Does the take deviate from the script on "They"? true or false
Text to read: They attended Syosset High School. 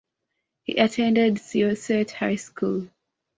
true